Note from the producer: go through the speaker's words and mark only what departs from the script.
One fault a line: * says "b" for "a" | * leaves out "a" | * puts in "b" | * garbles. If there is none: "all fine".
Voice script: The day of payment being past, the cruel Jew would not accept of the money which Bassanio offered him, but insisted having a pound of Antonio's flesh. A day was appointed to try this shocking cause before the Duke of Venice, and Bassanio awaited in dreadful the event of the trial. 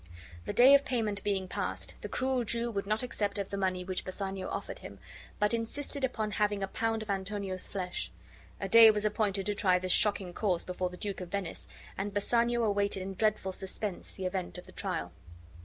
* puts in "upon"
* puts in "suspense"